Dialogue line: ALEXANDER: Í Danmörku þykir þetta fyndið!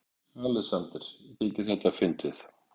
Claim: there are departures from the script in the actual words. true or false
true